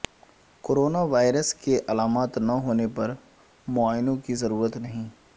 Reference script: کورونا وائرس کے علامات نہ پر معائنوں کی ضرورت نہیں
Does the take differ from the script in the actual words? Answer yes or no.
yes